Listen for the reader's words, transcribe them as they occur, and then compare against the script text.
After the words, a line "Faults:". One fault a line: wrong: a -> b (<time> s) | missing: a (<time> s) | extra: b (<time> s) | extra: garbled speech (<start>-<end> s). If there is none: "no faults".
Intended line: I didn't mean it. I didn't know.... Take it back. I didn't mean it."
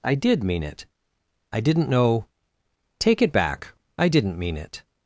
I did mean it. I didn't know.... Take it back. I didn't mean it."
Faults:
wrong: didn't -> did (0.1 s)